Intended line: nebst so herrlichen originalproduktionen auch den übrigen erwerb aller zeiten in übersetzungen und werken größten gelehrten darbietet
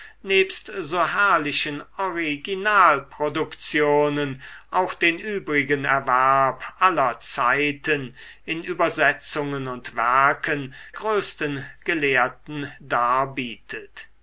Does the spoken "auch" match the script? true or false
true